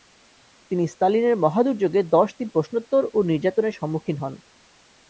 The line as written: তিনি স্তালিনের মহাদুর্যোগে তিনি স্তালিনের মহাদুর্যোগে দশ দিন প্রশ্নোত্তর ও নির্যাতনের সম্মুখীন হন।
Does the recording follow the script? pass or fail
fail